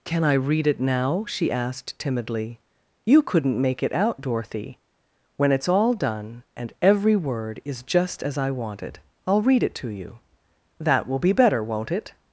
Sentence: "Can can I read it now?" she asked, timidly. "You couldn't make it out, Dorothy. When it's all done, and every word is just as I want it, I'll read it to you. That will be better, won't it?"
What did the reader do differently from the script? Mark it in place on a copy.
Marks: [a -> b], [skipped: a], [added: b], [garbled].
"Can [skipped: can] I read it now?" she asked, timidly. "You couldn't make it out, Dorothy. When it's all done, and every word is just as I want it, I'll read it to you. That will be better, won't it?"